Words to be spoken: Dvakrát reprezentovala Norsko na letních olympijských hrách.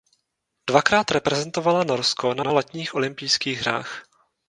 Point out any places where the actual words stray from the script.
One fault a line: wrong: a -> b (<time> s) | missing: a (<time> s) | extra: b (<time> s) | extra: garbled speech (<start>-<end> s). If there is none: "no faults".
extra: na (2.4 s)